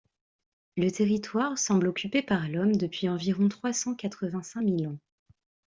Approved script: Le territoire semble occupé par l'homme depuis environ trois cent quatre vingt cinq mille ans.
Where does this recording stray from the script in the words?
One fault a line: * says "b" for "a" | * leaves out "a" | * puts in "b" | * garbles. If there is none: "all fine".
all fine